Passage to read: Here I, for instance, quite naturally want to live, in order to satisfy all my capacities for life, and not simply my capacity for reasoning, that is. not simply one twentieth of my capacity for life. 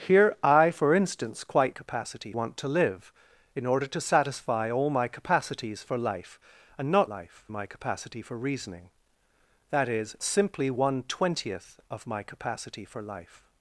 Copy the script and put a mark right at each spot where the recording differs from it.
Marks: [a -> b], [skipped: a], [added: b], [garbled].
Here I, for instance, quite [naturally -> capacity] want to live, in order to satisfy all my capacities for life, and not [simply -> life] my capacity for reasoning, that is. [skipped: not] simply one twentieth of my capacity for life.